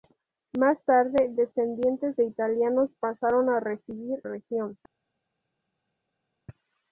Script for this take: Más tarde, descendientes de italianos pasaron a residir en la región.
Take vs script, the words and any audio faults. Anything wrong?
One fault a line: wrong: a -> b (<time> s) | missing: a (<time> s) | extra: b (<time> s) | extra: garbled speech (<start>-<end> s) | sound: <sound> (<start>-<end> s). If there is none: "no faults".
missing: en la (4.2 s)